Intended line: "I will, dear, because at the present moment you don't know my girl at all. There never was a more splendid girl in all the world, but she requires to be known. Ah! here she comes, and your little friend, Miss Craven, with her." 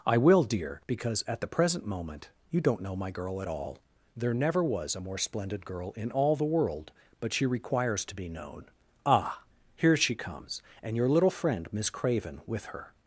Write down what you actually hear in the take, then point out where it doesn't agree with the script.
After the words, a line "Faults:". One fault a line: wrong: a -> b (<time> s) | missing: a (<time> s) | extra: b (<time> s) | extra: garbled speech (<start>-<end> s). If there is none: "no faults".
"I will, dear, because at the present moment you don't know my girl at all. There never was a more splendid girl in all the world, but she requires to be known. Ah! here she comes, and your little friend, Miss Craven, with her."
Faults:
no faults